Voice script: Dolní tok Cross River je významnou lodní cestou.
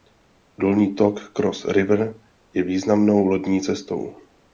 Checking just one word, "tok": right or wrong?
right